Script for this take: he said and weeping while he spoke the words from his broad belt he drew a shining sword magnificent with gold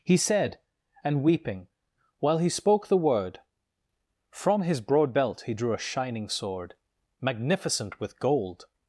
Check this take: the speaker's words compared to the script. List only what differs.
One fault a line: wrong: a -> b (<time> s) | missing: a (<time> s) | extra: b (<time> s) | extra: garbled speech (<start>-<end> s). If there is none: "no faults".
wrong: words -> word (3.0 s)